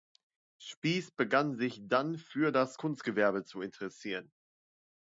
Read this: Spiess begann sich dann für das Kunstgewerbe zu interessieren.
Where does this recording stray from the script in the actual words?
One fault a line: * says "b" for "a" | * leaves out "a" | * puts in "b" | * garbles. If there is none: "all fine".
all fine